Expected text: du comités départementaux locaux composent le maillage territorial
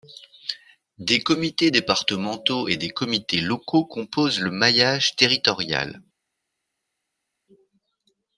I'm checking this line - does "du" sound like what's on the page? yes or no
no